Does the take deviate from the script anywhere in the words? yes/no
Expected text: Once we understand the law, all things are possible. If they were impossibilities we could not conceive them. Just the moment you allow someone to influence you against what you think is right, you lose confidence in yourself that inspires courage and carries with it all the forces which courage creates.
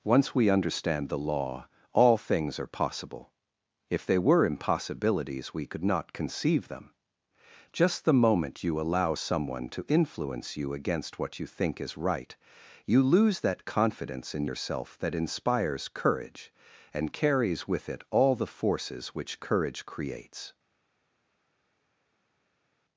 yes